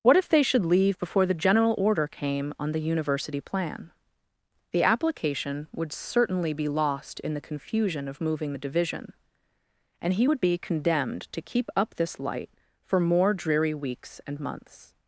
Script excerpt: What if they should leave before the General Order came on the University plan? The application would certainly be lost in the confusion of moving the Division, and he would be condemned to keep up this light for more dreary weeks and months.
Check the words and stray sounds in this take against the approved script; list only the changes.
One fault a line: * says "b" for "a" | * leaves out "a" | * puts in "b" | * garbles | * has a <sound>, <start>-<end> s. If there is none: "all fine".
all fine